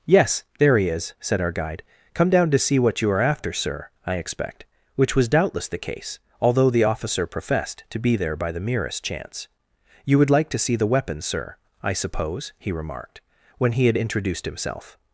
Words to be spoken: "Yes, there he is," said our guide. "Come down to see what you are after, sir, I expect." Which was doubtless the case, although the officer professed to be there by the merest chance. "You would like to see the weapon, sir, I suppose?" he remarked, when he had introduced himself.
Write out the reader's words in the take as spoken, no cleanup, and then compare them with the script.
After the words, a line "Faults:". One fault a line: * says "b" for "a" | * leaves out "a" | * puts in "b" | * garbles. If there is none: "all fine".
"Yes, there he is," said our guide. "Come down to see what you are after, sir, I expect." Which was doubtless the case, although the officer professed to be there by the merest chance. "You would like to see the weapon, sir, I suppose?" he remarked, when he had introduced himself.
Faults:
all fine